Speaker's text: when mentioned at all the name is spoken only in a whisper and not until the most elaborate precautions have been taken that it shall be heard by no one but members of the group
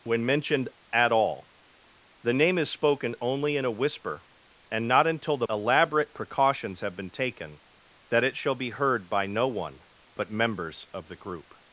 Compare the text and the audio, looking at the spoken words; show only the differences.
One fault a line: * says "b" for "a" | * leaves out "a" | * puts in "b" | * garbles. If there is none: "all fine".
* leaves out "most"